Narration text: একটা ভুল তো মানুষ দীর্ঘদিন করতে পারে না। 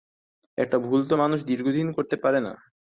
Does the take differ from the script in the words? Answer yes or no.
no